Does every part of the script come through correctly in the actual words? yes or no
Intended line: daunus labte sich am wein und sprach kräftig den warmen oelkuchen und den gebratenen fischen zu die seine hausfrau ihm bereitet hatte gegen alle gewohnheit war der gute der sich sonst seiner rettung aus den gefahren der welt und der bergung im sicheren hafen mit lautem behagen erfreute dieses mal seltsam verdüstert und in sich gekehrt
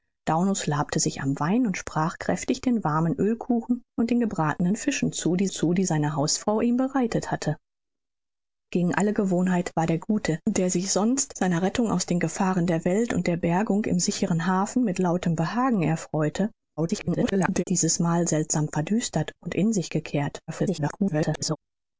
no